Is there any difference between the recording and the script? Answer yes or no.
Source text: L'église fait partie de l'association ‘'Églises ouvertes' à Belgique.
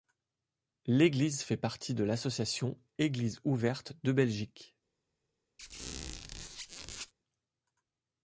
yes